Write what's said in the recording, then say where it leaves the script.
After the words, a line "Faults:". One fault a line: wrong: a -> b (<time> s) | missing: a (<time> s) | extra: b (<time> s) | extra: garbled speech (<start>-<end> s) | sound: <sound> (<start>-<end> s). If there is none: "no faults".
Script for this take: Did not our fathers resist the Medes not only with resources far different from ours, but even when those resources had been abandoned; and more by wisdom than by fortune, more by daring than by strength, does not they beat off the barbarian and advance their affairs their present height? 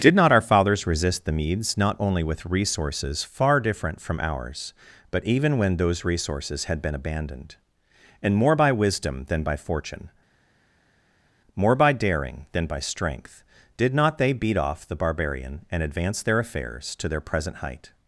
Did not our fathers resist the Medes not only with resources far different from ours, but even when those resources had been abandoned; and more by wisdom than by fortune, more by daring than by strength, did not they beat off the barbarian and advance their affairs to their present height?
Faults:
wrong: does -> did (13.7 s)
extra: to (16.9 s)